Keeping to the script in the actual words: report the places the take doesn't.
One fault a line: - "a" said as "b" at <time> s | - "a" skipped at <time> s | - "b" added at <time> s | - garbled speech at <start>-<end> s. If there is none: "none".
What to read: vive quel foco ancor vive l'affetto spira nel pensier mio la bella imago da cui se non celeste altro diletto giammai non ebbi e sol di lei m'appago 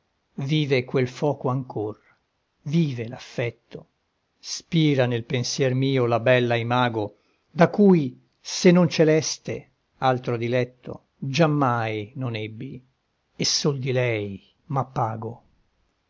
none